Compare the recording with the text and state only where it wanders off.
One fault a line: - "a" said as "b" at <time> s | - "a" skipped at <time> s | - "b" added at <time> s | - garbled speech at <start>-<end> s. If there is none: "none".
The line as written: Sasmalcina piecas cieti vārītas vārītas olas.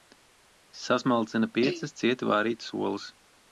- "vārītas" skipped at 2.8 s